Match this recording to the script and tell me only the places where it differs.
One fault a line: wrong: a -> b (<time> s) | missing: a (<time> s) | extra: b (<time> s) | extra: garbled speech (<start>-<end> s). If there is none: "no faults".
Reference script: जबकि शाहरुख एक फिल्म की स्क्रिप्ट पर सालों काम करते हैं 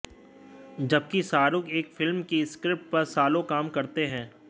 no faults